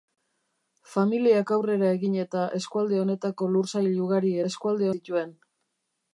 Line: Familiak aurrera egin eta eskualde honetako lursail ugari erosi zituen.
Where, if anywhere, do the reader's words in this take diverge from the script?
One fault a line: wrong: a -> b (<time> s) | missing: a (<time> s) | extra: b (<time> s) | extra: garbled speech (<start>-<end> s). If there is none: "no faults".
wrong: erosi -> eskualde (4.5 s)